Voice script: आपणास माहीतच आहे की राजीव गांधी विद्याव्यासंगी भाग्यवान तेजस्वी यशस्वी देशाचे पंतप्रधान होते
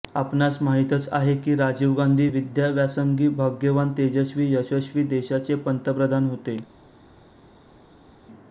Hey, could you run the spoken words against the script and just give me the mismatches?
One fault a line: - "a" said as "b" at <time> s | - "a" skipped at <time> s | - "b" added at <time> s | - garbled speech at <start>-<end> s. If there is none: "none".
none